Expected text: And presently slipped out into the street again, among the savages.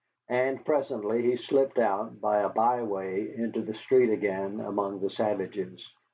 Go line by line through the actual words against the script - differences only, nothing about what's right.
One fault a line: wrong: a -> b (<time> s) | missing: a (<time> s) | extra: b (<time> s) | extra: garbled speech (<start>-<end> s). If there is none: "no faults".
extra: he (1.2 s)
extra: by a byway (2.2 s)